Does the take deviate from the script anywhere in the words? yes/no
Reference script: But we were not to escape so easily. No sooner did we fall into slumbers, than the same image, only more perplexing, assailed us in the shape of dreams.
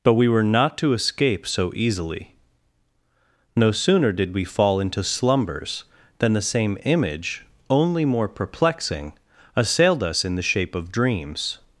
no